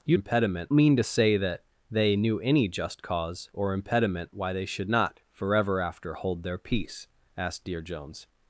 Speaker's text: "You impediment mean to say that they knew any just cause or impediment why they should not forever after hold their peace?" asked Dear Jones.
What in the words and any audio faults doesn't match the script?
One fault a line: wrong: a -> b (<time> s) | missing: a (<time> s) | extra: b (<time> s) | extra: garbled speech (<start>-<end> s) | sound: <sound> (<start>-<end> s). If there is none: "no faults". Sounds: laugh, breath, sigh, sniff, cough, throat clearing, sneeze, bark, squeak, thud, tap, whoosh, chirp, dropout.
no faults